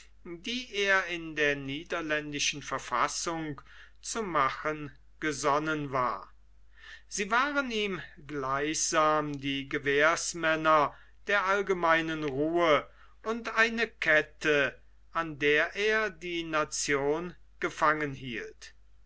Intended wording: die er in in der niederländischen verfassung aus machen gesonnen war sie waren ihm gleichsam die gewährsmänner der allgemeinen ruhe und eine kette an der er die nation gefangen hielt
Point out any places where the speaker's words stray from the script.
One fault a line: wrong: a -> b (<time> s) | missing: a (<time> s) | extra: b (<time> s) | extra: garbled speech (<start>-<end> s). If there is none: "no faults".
missing: in (1.4 s)
wrong: aus -> zu (4.0 s)